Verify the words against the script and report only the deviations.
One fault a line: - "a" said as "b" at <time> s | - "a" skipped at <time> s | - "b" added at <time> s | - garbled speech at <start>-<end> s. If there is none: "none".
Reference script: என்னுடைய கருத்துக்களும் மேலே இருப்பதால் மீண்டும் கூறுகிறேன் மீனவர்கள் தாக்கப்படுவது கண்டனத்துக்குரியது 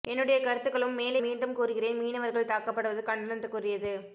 - "இருப்பதால்" skipped at 1.2 s